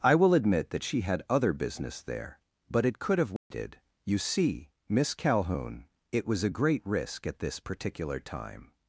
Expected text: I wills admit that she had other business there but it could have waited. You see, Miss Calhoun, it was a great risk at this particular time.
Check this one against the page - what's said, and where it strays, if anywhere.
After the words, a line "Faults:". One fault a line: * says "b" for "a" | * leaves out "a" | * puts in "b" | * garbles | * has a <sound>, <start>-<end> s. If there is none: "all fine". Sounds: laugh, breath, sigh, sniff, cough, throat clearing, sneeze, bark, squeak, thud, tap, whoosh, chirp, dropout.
I will admit that she had other business there but it could have waited. You see, Miss Calhoun, it was a great risk at this particular time.
Faults:
* says "will" for "wills"
* has a dropout, 3.4-3.5 s